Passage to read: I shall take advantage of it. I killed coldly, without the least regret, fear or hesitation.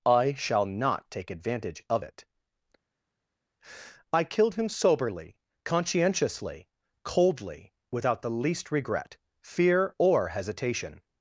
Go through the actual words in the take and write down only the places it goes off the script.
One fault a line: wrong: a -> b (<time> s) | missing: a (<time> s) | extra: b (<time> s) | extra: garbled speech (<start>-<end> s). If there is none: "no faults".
extra: not (0.7 s)
extra: him soberly conscientiously (4.5 s)